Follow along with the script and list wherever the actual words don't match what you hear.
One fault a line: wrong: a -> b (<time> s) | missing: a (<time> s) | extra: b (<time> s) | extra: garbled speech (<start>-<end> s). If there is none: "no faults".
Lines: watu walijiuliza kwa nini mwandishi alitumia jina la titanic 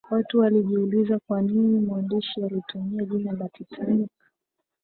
no faults